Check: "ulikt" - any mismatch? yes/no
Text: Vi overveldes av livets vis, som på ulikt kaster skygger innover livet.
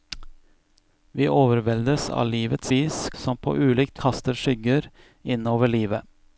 no